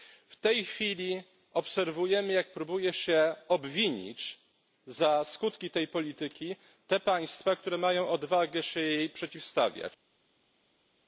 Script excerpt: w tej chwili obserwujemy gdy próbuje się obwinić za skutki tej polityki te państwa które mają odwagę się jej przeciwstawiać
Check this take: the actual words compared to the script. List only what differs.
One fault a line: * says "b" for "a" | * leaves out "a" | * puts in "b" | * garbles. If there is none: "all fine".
* says "jak" for "gdy"